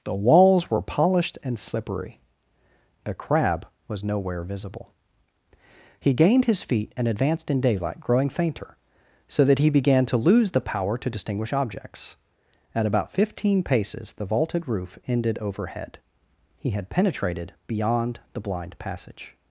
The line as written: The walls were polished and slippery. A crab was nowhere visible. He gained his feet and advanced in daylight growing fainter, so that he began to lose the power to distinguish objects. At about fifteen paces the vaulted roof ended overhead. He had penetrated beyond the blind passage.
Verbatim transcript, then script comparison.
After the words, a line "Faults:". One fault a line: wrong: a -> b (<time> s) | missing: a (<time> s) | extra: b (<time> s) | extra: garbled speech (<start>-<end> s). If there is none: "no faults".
The walls were polished and slippery. A crab was nowhere visible. He gained his feet and advanced in daylight growing fainter, so that he began to lose the power to distinguish objects. At about fifteen paces the vaulted roof ended overhead. He had penetrated beyond the blind passage.
Faults:
no faults